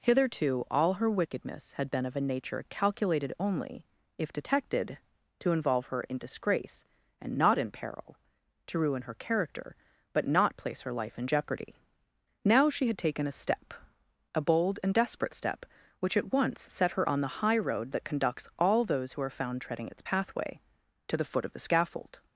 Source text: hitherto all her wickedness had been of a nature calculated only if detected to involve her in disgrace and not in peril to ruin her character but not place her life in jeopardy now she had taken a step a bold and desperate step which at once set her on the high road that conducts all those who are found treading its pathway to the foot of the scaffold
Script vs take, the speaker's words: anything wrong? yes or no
no